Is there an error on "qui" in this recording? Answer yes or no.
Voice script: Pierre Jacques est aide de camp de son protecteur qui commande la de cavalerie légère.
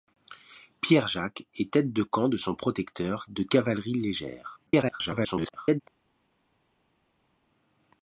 yes